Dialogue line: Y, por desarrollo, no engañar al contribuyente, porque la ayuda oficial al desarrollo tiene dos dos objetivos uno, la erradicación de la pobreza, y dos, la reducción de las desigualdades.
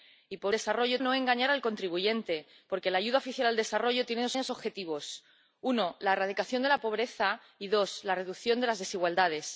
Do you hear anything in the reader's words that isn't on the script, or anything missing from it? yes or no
no